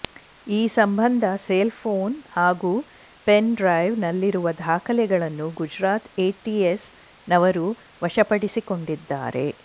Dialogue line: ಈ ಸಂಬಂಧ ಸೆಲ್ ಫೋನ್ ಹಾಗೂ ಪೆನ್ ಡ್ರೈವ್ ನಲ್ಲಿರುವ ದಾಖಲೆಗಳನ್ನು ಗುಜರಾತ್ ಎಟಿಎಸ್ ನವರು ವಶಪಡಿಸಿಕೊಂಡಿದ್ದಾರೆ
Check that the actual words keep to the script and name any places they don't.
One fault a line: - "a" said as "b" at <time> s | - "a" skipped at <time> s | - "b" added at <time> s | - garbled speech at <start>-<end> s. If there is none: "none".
none